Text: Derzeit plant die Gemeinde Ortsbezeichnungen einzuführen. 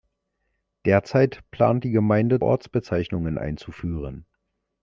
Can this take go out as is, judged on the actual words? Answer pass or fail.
pass